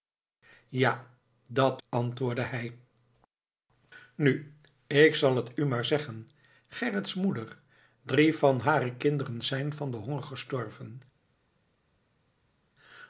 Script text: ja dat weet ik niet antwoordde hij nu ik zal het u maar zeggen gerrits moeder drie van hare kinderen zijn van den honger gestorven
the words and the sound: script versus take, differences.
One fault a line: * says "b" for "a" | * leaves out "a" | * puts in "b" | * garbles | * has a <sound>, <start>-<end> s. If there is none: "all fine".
* leaves out "weet ik niet"